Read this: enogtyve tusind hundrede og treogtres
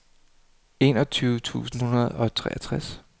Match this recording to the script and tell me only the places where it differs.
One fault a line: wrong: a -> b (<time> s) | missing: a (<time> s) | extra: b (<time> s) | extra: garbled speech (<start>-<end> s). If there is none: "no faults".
no faults